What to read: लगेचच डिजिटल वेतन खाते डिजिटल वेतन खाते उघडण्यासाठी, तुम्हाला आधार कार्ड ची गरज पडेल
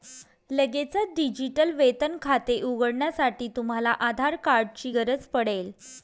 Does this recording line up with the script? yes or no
no